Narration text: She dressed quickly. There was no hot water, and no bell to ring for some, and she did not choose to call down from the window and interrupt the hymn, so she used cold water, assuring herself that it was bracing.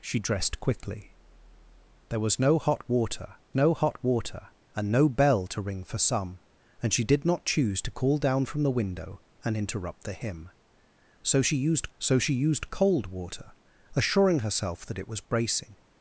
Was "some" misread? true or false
false